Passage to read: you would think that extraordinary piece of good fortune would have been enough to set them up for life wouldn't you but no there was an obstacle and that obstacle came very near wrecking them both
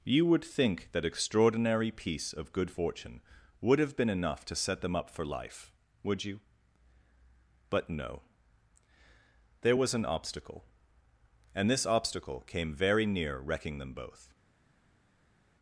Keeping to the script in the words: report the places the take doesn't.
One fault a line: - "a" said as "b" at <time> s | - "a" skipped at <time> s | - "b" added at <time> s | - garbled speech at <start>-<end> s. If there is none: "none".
- "wouldn't" said as "would" at 6.0 s
- "that" said as "this" at 11.7 s